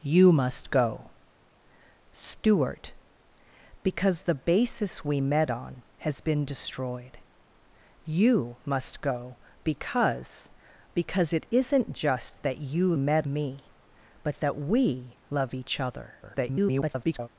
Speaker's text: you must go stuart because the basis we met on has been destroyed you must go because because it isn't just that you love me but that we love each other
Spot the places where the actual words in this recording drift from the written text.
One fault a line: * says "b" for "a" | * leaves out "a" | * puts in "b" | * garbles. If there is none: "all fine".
* says "met" for "love"
* garbles